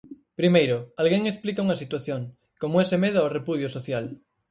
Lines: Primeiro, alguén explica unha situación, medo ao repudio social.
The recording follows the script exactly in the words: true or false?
false